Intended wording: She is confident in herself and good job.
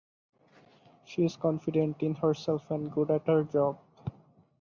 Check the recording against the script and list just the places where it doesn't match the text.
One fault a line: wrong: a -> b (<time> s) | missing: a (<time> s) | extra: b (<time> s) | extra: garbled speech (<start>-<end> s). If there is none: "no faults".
extra: at her (3.1 s)